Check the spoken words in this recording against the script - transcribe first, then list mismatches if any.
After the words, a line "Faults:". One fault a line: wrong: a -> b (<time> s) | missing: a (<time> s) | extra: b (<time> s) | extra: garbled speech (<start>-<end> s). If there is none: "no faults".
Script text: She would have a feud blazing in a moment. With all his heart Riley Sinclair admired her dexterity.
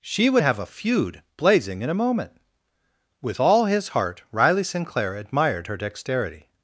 She would have a feud blazing in a moment. With all his heart Riley Sinclair admired her dexterity.
Faults:
no faults